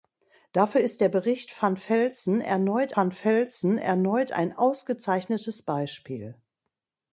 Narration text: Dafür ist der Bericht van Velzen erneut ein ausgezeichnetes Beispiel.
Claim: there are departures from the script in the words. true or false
true